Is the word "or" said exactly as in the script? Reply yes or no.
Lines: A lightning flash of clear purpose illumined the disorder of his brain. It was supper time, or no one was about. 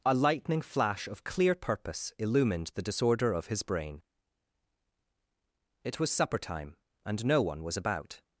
no